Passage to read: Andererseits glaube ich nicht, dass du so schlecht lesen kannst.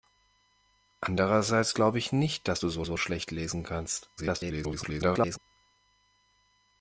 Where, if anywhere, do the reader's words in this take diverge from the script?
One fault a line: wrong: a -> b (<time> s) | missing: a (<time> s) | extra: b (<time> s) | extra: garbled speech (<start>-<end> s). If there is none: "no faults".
extra: so (2.8 s)
extra: garbled speech (4.2-5.4 s)